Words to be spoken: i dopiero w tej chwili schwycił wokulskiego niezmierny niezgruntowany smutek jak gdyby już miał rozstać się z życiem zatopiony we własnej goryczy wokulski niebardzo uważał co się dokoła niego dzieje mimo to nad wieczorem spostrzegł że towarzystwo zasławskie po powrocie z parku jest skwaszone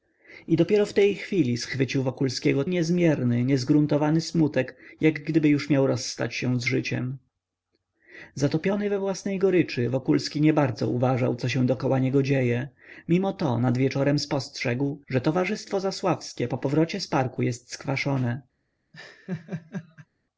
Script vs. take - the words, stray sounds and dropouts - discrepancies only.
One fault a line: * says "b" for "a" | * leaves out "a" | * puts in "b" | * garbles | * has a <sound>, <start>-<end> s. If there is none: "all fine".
* has a laugh, 18.9-20.1 s